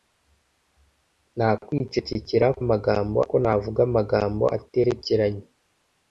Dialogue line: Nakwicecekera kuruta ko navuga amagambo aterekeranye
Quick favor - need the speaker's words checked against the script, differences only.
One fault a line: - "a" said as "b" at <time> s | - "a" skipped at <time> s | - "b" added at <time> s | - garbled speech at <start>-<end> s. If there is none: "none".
- "kuruta" said as "amagambo" at 2.6 s